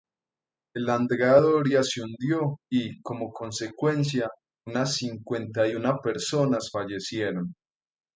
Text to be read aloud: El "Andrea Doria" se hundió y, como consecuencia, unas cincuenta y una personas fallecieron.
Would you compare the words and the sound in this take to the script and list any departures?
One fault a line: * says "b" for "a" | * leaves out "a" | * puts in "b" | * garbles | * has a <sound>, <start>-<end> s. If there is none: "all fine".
all fine